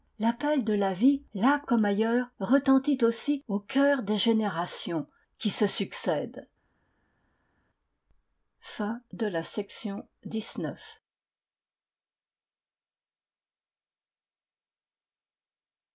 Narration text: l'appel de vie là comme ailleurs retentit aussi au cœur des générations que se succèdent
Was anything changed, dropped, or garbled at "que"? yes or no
yes